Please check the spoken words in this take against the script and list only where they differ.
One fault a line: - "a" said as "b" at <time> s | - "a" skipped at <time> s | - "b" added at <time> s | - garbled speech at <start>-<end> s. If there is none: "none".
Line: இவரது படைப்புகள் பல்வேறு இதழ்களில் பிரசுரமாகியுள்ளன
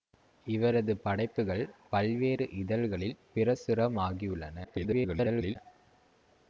- garbled speech at 4.6-5.6 s